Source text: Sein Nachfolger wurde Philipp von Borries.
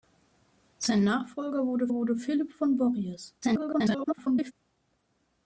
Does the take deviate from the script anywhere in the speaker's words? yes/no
yes